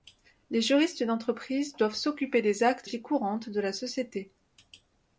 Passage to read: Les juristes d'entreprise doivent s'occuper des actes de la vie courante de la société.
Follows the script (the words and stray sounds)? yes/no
no